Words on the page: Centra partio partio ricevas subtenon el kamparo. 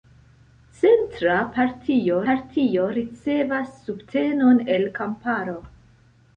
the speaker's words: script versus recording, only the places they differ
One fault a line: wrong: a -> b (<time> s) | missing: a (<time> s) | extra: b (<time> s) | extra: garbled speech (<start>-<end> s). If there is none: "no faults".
no faults